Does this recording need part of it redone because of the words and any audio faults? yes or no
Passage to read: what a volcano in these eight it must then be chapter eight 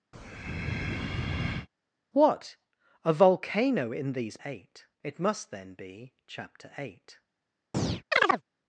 yes